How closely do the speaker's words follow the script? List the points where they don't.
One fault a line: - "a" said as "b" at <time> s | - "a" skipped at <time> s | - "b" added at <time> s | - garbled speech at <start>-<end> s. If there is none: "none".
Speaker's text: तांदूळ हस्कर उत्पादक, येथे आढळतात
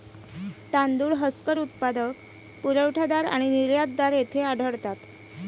- "पुरवठादार आणि निर्यातदार" added at 2.6 s